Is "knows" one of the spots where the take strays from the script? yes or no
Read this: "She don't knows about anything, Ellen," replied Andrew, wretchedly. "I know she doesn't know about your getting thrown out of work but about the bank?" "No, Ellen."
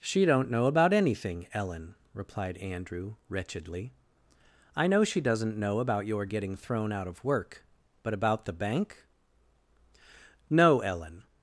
yes